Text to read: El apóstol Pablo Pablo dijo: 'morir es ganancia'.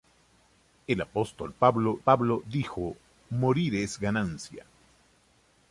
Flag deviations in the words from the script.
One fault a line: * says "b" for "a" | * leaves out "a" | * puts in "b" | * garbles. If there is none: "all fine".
all fine